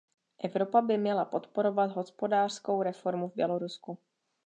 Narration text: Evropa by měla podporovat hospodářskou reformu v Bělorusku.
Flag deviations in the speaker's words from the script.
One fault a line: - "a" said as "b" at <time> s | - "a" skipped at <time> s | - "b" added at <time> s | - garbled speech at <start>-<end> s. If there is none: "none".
none